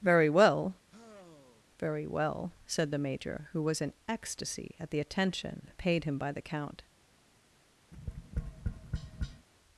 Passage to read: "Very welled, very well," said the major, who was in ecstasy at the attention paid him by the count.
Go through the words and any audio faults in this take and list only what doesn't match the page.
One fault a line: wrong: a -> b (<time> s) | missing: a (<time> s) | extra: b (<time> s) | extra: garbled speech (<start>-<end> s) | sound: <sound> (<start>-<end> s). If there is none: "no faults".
wrong: welled -> well (0.3 s)
sound: sigh (0.9-1.6 s)
sound: tap (7.9-9.5 s)